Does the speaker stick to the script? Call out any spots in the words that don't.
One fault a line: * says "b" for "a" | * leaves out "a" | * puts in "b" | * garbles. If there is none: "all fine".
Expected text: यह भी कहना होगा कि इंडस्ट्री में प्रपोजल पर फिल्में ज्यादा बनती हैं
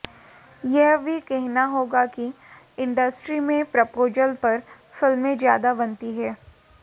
all fine